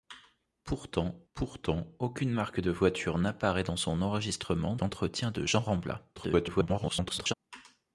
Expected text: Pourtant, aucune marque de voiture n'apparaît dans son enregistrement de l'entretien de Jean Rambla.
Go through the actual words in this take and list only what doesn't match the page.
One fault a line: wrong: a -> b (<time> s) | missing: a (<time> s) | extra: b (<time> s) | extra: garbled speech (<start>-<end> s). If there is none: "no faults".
extra: pourtant (1.3 s)
missing: de (4.8 s)
extra: garbled speech (6.2-7.3 s)